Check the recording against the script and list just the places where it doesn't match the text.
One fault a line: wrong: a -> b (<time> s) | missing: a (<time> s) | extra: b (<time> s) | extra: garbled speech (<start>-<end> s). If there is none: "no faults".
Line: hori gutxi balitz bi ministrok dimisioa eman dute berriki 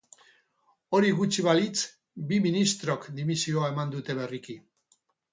no faults